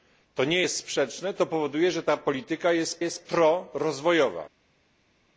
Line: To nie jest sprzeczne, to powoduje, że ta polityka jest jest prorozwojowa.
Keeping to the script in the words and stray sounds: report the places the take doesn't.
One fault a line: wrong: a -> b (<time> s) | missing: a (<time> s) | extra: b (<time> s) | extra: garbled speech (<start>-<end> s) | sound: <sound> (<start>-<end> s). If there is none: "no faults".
no faults